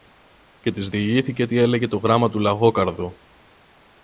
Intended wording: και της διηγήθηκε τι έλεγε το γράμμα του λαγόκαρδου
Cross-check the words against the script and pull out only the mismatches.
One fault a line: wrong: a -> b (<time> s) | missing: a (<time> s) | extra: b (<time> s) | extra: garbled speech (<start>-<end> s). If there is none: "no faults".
no faults